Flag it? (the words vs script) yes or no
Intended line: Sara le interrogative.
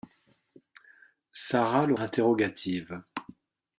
no